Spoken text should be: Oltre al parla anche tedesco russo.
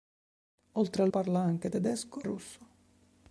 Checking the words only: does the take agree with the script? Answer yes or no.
yes